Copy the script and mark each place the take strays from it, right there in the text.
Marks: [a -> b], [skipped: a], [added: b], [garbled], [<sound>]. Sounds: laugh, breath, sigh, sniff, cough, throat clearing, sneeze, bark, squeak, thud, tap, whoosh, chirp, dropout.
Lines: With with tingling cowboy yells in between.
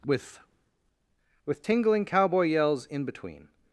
With with tingling cowboy yells in between.